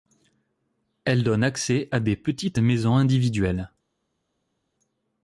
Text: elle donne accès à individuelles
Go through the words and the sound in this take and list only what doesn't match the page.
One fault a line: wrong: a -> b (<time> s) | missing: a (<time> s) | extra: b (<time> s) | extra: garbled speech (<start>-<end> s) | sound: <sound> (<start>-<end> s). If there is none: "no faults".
extra: des petites maisons (2.0 s)